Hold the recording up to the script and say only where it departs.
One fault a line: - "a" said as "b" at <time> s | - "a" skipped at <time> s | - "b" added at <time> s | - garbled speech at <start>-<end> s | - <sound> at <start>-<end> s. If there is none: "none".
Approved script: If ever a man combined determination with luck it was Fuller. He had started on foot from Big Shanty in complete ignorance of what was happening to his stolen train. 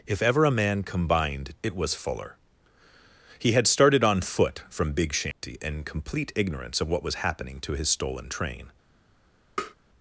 - "determination with luck" skipped at 1.5 s
- dropout at 5.3-5.4 s
- tap at 9.6-9.7 s